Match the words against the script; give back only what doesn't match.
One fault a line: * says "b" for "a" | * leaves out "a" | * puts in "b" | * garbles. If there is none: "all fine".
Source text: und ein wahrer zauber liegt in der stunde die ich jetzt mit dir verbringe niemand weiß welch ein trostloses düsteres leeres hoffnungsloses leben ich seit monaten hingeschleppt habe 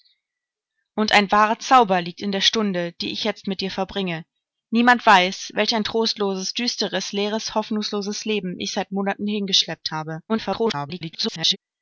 * garbles